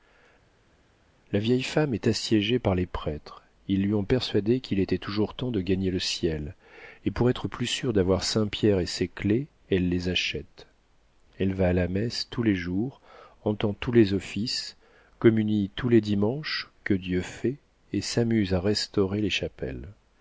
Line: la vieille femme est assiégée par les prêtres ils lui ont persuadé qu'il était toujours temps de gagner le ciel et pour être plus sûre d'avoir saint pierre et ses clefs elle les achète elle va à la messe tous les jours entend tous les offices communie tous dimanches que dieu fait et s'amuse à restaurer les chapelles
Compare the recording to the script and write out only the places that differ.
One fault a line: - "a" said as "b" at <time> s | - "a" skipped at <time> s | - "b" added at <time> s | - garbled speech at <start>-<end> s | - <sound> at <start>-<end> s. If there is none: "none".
- "les" added at 15.9 s